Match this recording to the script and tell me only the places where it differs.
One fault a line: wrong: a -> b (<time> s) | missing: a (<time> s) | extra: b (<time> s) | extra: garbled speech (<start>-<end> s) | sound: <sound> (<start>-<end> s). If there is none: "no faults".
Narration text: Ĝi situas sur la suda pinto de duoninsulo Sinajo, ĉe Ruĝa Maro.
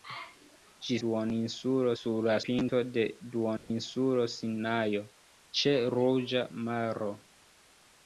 wrong: situas -> duoninsulo (1.0 s)
missing: suda (2.4 s)
sound: dropout (3.6-3.7 s)